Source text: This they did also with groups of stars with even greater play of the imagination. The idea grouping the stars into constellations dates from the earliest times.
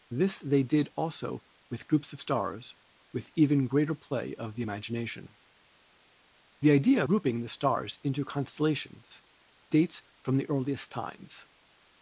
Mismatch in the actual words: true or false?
false